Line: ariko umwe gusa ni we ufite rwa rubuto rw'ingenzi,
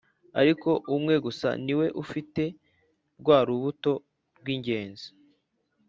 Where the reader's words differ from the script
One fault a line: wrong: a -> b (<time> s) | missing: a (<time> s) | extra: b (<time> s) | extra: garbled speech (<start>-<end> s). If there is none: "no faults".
no faults